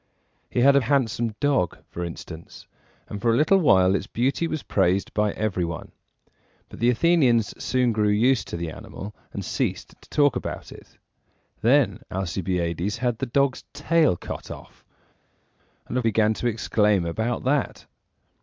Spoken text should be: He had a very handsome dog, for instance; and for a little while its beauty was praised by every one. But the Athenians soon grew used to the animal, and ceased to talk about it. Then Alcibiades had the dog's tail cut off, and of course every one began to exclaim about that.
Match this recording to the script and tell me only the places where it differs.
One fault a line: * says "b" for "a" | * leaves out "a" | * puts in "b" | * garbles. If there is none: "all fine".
* leaves out "very"
* leaves out "course every one"